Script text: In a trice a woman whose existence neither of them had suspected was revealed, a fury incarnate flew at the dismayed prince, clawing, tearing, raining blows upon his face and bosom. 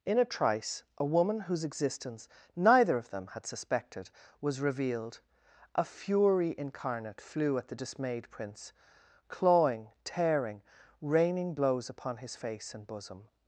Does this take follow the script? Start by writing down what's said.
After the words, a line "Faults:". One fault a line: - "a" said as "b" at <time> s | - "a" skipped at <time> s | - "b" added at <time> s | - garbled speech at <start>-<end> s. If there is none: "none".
In a trice a woman whose existence neither of them had suspected was revealed, a fury incarnate flew at the dismayed prince, clawing, tearing, raining blows upon his face and bosom.
Faults:
none